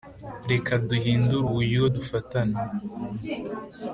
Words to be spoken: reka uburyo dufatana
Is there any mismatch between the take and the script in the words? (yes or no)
yes